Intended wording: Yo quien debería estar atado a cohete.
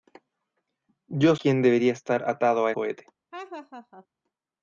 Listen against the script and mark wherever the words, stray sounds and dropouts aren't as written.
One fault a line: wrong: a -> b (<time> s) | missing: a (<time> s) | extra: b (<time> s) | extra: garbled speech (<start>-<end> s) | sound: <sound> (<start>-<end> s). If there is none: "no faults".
sound: laugh (3.3-4.1 s)